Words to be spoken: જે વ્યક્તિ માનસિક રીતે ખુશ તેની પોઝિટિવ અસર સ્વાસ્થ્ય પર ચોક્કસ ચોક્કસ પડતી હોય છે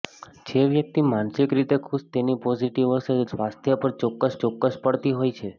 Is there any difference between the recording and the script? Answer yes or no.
no